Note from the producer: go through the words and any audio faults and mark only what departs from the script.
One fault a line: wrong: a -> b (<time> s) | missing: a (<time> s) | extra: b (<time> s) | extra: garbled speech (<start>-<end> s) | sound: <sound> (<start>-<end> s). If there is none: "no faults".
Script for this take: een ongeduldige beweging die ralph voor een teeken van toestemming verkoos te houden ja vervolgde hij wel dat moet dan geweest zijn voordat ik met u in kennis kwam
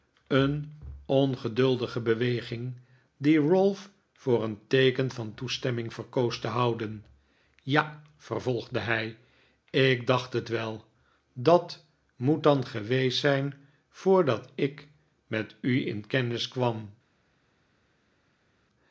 extra: ik dacht het (9.7 s)